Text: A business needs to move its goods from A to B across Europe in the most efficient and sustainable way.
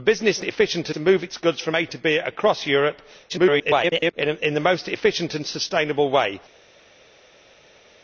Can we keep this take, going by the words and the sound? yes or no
no